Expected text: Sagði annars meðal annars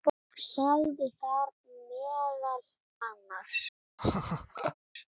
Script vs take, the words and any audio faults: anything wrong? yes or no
yes